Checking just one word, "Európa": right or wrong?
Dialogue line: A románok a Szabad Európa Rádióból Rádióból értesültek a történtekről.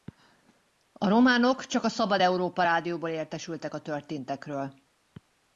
right